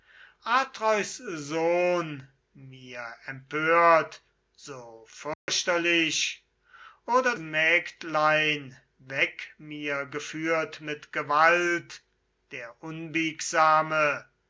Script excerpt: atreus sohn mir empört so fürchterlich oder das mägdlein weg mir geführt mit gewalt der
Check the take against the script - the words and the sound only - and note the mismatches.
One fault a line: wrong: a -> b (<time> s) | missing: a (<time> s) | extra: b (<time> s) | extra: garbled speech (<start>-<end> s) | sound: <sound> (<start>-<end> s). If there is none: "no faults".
sound: dropout (5.3-5.5 s)
missing: das (7.3 s)